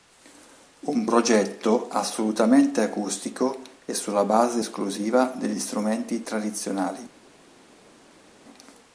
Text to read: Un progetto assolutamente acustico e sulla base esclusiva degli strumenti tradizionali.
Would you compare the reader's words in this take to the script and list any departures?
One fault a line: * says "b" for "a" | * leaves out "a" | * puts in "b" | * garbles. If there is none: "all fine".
all fine